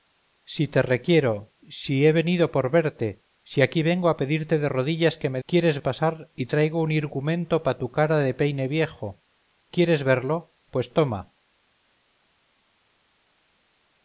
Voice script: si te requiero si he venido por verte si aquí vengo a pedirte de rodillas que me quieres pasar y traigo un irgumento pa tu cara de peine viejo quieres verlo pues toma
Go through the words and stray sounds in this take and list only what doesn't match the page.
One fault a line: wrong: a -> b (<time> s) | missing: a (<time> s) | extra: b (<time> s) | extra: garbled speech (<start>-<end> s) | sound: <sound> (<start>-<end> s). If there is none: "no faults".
no faults